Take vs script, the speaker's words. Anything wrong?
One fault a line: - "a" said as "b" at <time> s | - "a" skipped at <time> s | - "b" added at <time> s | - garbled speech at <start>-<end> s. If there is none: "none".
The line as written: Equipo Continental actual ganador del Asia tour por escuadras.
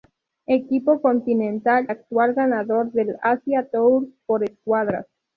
none